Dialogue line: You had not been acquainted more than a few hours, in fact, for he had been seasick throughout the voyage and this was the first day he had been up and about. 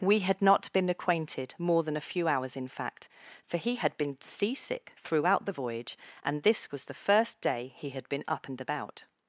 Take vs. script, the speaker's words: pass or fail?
fail